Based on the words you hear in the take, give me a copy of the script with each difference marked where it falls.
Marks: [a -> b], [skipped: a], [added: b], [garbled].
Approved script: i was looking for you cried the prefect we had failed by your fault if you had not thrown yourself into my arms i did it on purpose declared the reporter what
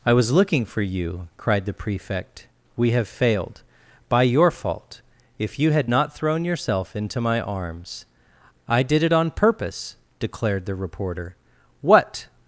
i was looking for you cried the prefect we [had -> have] failed by your fault if you had not thrown yourself into my arms i did it on purpose declared the reporter what